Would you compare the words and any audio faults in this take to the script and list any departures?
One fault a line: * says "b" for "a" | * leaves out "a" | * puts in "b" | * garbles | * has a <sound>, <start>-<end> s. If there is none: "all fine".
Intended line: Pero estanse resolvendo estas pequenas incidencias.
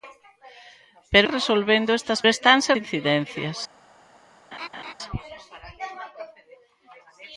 * leaves out "estanse"
* says "estanse" for "pequenas"
* has a laugh, 4.5-4.9 s